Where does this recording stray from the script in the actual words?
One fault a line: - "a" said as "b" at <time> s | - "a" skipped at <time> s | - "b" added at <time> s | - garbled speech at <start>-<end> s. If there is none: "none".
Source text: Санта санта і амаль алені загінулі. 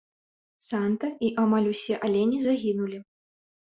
- "санта" skipped at 1.1 s
- "усе" added at 1.8 s